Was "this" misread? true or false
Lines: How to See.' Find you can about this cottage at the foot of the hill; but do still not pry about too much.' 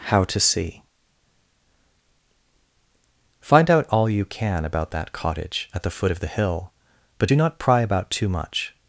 true